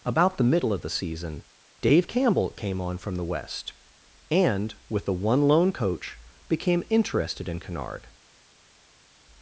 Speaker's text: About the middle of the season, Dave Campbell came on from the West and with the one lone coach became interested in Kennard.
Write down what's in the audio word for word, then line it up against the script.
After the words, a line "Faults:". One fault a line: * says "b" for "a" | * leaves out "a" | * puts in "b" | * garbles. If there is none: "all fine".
About the middle of the season, Dave Campbell came on from the West and with the one lone coach became interested in Kennard.
Faults:
all fine